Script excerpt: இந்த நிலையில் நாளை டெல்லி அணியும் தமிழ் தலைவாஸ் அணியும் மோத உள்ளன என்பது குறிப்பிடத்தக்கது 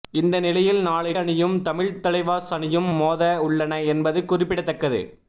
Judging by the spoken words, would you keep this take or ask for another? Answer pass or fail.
fail